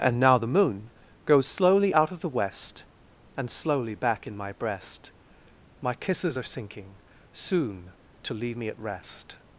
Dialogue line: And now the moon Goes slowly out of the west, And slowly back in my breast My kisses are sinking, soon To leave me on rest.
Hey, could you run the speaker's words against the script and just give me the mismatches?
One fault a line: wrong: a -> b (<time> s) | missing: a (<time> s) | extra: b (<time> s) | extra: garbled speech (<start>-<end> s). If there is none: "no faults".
wrong: on -> at (8.7 s)